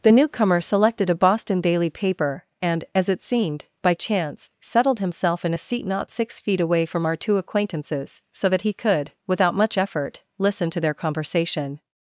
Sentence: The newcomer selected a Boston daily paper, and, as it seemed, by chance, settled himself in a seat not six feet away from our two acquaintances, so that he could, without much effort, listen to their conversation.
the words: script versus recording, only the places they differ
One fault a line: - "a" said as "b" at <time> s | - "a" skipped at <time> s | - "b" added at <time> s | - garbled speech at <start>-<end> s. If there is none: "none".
none